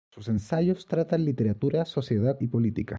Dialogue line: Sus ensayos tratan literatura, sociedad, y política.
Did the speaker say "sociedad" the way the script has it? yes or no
yes